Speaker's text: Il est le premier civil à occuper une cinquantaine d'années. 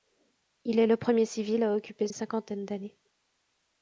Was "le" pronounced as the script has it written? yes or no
yes